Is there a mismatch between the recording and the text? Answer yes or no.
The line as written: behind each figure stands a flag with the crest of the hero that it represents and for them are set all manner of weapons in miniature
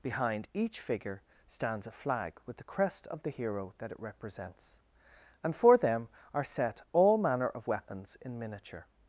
no